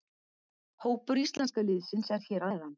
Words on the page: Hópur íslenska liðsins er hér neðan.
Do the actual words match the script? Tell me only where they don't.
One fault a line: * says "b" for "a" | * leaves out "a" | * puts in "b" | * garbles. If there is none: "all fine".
all fine